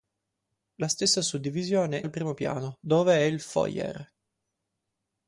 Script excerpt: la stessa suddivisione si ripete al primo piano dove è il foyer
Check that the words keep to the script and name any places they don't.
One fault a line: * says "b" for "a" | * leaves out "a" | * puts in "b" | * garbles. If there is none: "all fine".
* leaves out "si ripete"